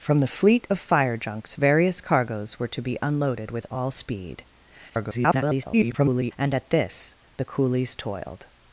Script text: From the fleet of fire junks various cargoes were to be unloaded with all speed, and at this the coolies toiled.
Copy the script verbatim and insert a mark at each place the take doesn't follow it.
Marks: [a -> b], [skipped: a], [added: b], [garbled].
From the fleet of fire junks various cargoes were to be unloaded with all speed, [garbled] and at this the coolies toiled.